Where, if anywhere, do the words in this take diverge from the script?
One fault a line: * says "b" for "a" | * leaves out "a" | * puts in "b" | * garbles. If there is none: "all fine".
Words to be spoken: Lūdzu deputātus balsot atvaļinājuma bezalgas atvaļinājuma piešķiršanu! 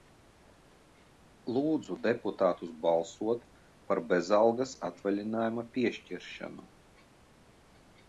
* says "par" for "atvaļinājuma"